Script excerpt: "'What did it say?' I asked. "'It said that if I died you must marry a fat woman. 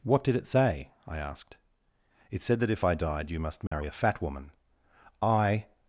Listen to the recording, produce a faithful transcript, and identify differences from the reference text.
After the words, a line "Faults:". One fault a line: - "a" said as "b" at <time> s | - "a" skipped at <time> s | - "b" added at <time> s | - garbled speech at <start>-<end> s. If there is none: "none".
"'What did it say?' I asked. "'It said that if I died you must marry a fat woman. "'I
Faults:
- "I" added at 5.2 s